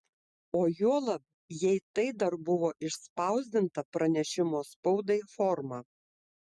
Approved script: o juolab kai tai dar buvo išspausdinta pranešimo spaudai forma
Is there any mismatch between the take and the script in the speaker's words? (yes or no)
yes